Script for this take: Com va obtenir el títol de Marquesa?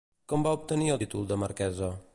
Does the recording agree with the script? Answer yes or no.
yes